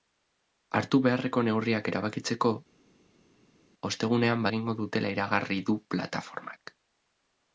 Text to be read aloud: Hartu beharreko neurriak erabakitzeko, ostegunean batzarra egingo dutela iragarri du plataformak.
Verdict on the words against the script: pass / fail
fail